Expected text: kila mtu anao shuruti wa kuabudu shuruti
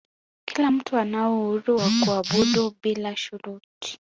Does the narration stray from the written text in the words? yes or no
yes